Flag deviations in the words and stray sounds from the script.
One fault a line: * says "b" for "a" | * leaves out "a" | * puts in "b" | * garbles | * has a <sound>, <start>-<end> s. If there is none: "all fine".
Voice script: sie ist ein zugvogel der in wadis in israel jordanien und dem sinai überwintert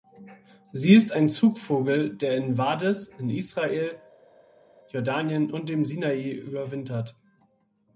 all fine